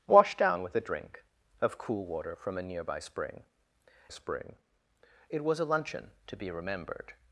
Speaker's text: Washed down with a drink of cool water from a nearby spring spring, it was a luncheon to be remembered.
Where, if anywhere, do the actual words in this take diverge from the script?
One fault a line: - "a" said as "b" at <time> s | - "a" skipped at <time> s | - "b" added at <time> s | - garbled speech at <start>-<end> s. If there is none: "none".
none